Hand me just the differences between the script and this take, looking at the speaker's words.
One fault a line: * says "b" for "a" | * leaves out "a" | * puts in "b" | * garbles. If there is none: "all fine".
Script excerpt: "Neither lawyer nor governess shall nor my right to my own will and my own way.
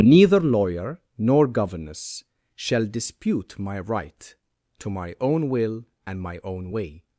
* says "dispute" for "nor"